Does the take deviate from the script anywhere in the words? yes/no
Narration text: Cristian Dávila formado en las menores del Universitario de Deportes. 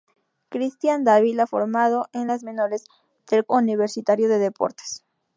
no